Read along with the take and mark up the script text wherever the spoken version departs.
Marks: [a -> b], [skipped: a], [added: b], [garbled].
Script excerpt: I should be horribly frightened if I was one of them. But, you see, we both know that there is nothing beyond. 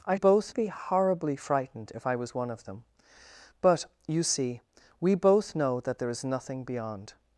I [should -> both] be horribly frightened if I was one of them. But, you see, we both know that there is nothing beyond.